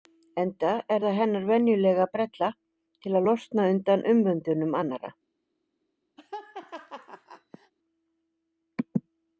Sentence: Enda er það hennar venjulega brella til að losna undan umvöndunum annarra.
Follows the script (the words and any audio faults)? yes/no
no